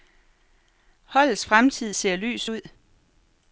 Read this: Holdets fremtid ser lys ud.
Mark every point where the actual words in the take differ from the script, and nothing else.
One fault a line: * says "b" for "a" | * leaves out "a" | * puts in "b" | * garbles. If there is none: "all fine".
all fine